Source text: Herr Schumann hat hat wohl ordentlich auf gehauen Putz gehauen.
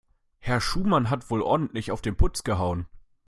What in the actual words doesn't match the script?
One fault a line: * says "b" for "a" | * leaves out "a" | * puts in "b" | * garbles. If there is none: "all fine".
* leaves out "hat"
* says "den" for "gehauen"